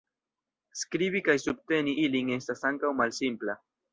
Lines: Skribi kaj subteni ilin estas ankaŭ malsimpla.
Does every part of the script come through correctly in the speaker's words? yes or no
yes